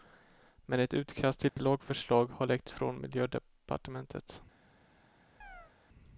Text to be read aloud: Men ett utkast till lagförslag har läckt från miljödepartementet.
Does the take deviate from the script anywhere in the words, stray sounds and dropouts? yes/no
yes